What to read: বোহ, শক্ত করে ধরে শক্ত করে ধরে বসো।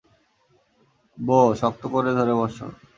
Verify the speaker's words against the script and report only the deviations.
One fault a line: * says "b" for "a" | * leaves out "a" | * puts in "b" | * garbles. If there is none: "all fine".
* leaves out "শক্ত করে ধরে"